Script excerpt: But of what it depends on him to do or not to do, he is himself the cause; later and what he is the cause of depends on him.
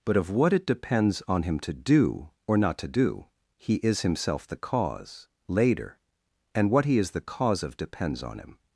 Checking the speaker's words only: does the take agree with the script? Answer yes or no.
yes